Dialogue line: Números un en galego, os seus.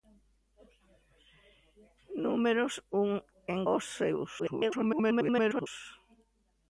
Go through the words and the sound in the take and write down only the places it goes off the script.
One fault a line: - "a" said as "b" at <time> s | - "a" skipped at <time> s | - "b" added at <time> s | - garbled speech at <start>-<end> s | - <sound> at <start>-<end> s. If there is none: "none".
- "galego" skipped at 3.6 s
- garbled speech at 4.4-5.7 s